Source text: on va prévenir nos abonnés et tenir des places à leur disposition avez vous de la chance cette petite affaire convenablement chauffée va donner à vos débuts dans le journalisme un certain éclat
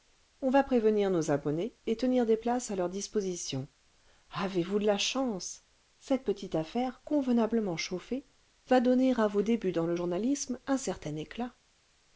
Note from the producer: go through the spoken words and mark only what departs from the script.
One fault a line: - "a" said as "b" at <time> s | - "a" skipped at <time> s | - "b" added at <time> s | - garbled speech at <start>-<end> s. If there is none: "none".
none